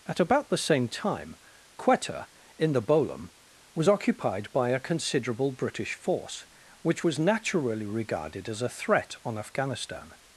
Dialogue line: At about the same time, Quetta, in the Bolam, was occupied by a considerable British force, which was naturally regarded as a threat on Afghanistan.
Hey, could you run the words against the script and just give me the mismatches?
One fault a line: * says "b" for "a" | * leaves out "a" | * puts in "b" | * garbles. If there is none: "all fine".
all fine